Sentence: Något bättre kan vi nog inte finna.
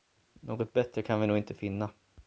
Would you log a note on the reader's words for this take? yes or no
no